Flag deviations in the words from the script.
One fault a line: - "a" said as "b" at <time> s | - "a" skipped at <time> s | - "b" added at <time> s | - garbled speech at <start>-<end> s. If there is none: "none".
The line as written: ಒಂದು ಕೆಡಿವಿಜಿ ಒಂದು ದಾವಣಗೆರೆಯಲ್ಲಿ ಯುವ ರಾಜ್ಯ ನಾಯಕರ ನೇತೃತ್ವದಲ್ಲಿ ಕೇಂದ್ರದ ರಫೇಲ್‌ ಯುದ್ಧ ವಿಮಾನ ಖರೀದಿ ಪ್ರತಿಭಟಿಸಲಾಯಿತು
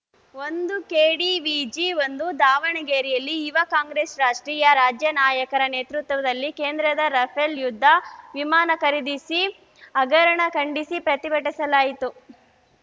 - "ಕಾಂಗ್ರೆಸ್ ರಾಷ್ಟ್ರೀಯ" added at 3.7 s
- "ಹಗರಣ ಖಂಡಿಸಿ" added at 9.9 s